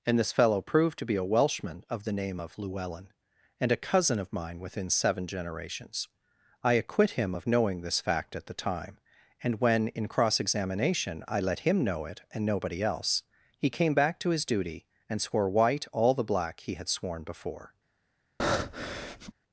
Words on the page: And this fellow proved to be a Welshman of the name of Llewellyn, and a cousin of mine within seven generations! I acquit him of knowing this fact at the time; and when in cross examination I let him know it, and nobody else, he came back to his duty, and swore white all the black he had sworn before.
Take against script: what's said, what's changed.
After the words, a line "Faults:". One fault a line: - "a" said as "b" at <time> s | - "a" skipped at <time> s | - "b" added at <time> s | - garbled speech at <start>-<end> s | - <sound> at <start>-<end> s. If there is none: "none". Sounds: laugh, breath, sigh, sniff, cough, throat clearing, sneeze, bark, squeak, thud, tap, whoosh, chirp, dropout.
And this fellow proved to be a Welshman of the name of Llewellyn, and a cousin of mine within seven generations! I acquit him of knowing this fact at the time; and when in cross examination I let him know it, and nobody else, he came back to his duty, and swore white all the black he had sworn before.
Faults:
- breath at 18.4-19.3 s